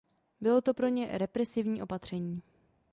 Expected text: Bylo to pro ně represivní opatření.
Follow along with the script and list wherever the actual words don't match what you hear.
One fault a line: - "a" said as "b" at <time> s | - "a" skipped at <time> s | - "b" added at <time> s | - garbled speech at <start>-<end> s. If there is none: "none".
none